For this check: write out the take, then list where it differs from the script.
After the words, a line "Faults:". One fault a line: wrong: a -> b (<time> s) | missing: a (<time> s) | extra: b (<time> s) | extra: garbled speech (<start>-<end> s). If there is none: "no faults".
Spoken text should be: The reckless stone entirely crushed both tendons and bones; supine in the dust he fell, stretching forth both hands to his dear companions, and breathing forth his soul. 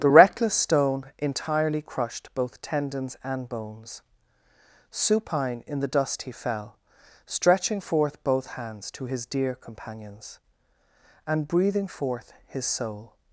The reckless stone entirely crushed both tendons and bones; supine in the dust he fell, stretching forth both hands to his dear companions, and breathing forth his soul.
Faults:
no faults